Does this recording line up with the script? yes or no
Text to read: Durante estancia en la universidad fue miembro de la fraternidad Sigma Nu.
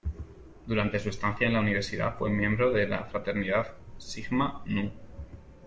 no